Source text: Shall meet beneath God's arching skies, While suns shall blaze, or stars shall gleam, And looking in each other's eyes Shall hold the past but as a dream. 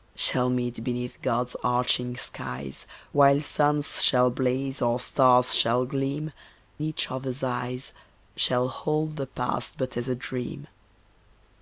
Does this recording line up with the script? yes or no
no